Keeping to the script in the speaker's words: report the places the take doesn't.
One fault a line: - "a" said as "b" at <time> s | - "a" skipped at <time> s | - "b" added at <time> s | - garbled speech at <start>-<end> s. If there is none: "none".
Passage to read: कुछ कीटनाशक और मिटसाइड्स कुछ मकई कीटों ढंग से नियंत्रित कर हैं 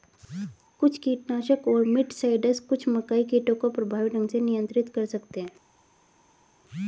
- "को प्रभावी" added at 3.6 s
- "सकते" added at 5.1 s